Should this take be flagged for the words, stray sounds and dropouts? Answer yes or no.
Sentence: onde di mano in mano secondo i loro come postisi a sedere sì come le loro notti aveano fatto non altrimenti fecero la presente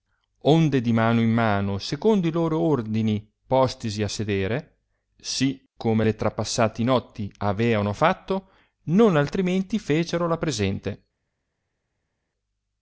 yes